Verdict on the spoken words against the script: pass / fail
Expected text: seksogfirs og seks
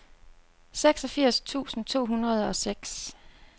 fail